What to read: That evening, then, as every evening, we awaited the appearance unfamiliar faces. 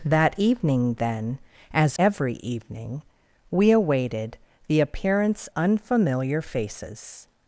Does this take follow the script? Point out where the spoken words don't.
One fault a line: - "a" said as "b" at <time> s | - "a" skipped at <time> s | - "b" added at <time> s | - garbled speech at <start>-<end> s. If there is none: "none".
none